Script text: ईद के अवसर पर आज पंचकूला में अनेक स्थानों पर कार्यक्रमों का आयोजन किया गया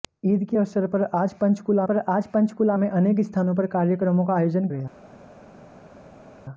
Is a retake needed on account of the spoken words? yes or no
yes